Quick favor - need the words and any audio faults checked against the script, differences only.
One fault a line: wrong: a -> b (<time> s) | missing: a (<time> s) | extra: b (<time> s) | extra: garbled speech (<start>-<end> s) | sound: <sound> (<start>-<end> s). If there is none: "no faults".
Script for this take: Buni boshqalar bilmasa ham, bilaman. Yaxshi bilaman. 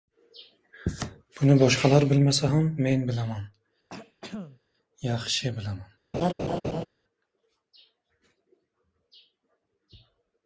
extra: men (2.9 s)
sound: throat clearing (3.9-4.6 s)
sound: laugh (6.1-6.9 s)